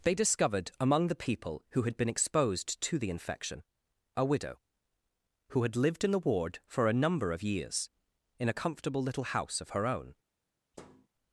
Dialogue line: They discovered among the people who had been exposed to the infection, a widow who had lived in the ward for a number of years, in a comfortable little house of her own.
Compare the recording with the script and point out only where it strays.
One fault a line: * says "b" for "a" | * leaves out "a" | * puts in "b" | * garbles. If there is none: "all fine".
all fine